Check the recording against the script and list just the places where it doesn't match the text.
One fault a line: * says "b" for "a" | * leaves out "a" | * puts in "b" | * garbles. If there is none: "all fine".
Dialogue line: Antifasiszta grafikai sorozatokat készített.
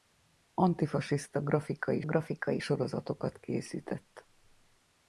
* puts in "grafikai"